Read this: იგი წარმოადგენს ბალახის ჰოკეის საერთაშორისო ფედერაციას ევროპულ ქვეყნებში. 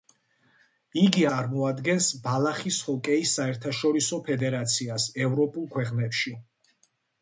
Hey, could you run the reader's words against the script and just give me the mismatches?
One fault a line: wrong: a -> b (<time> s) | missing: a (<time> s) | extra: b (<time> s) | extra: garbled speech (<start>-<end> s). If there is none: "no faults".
no faults